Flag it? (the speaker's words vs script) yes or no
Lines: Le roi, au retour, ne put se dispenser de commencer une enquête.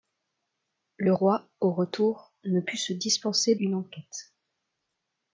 yes